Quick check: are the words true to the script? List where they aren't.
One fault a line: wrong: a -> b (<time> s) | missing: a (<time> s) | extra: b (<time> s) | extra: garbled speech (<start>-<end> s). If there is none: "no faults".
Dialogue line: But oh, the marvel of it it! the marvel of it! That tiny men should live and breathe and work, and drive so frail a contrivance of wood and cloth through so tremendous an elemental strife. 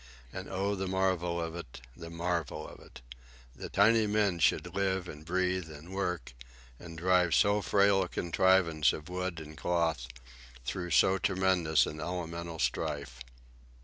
wrong: But -> And (0.3 s)
missing: it (1.8 s)